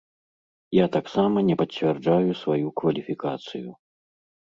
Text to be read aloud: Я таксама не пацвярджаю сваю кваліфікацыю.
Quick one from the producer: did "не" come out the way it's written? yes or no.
yes